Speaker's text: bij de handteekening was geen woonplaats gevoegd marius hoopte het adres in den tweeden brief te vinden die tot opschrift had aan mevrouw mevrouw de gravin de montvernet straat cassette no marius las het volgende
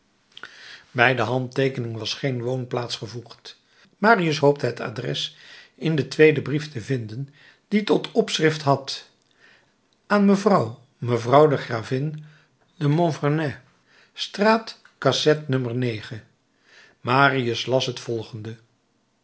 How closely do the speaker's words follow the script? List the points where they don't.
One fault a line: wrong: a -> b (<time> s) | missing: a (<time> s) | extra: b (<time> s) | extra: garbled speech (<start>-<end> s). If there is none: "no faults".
no faults